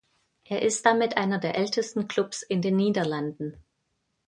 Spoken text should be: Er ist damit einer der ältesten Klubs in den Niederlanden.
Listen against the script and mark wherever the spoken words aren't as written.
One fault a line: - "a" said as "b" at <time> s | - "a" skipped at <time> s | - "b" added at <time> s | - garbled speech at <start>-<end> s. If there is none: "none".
none